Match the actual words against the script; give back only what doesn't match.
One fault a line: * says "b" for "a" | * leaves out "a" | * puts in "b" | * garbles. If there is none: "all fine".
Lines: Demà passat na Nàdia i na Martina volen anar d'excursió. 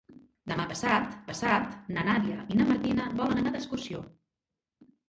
* puts in "passat"